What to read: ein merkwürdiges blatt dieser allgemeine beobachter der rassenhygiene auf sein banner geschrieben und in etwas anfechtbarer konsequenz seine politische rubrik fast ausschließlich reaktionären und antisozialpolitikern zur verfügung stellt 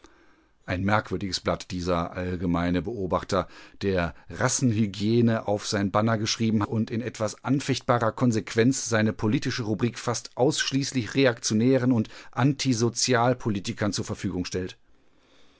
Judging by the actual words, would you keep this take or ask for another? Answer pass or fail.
pass